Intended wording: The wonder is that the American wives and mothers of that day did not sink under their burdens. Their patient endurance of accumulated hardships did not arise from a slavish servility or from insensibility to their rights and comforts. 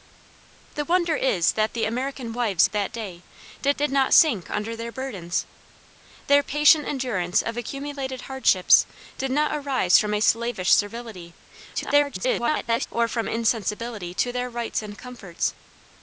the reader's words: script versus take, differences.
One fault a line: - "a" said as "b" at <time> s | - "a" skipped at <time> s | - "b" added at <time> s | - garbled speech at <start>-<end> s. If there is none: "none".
- "and mothers" skipped at 2.7 s
- "did" added at 3.8 s
- garbled speech at 11.7-12.9 s